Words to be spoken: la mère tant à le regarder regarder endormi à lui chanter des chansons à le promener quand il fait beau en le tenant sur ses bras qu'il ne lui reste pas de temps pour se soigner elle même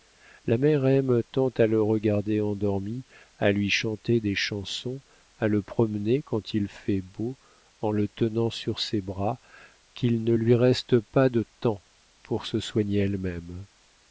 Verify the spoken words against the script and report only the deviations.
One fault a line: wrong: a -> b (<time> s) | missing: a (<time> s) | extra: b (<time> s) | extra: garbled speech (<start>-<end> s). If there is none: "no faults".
extra: aime (0.9 s)
missing: regarder (2.4 s)